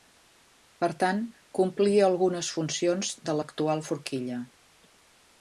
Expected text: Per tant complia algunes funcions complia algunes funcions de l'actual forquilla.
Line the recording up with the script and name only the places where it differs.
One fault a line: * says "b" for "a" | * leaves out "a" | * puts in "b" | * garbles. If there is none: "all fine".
* leaves out "complia algunes funcions"